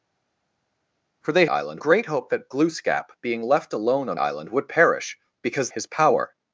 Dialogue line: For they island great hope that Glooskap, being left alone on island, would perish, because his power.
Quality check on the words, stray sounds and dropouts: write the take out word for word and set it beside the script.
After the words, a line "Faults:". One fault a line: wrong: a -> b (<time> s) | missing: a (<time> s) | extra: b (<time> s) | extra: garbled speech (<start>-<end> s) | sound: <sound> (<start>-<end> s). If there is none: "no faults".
For they island great hope that Glooskap, being left alone on island, would perish, because his power.
Faults:
no faults